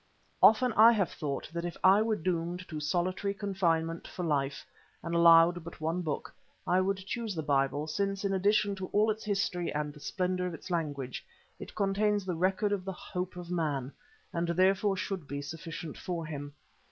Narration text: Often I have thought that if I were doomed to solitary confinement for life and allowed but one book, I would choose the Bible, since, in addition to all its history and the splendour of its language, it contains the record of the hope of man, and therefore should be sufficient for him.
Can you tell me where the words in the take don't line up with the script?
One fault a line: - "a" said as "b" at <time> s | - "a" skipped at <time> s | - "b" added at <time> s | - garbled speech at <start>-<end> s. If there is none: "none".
none